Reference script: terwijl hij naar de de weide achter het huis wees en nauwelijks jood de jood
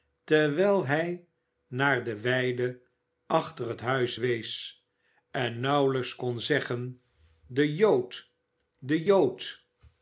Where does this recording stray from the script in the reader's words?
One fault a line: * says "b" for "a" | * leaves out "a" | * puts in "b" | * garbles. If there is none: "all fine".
* leaves out "de"
* puts in "kon zeggen de"